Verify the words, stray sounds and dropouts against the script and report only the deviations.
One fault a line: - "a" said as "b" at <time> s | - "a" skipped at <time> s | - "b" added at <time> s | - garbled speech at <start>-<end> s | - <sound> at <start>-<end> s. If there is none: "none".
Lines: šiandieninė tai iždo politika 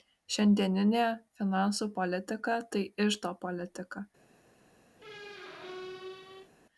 - "finansų politika" added at 1.4 s
- squeak at 5.0-6.5 s